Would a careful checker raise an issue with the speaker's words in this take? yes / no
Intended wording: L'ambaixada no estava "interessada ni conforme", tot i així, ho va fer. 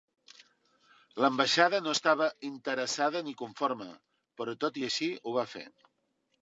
yes